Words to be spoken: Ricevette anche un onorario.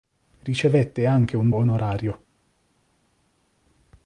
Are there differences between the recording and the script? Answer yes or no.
no